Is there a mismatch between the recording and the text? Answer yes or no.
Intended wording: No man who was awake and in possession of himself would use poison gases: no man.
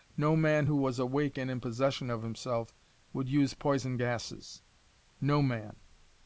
no